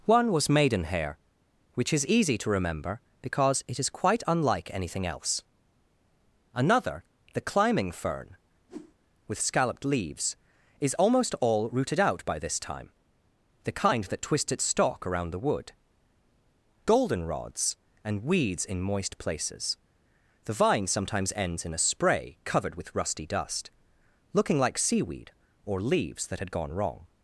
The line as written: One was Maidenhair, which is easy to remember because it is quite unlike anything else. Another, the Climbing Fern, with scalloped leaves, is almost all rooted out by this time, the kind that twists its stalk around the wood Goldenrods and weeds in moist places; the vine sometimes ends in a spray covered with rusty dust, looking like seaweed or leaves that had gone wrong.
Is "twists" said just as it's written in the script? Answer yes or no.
no